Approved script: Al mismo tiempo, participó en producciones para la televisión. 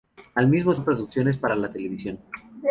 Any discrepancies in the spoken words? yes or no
yes